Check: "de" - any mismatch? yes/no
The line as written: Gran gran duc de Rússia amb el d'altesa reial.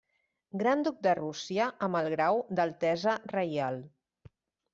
no